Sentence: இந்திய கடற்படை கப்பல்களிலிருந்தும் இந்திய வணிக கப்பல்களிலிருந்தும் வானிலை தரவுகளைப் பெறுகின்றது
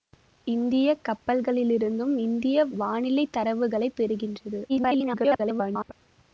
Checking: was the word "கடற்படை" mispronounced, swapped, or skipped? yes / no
yes